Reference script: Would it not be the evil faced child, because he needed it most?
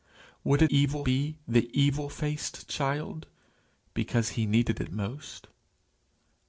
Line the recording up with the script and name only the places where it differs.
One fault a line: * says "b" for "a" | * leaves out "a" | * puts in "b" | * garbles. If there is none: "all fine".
* says "evil" for "not"